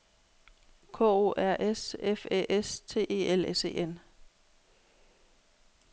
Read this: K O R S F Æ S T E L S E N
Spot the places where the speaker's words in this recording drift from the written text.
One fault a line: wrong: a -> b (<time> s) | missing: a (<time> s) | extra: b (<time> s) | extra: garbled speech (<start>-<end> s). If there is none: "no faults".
no faults